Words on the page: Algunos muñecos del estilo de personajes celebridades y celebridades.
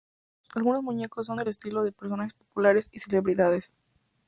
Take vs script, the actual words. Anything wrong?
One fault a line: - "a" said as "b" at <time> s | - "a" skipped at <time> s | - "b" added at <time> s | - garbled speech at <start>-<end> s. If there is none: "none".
- "son" added at 1.3 s
- "celebridades" said as "populares" at 2.3 s